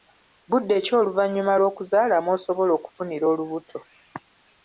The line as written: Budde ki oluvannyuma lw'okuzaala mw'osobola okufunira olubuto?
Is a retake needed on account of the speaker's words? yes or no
no